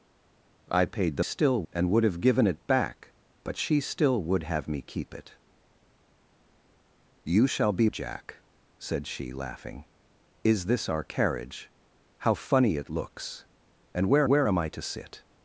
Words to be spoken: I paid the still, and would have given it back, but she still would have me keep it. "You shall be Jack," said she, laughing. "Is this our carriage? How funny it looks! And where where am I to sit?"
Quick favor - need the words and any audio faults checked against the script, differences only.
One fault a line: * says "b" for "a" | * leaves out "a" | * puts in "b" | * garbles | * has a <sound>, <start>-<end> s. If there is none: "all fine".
all fine